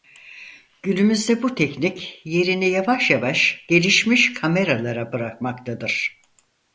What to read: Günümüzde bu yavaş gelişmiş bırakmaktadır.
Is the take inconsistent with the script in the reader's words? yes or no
yes